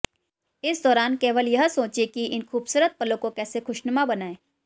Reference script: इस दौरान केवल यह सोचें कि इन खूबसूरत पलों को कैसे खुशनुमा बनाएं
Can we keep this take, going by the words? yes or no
yes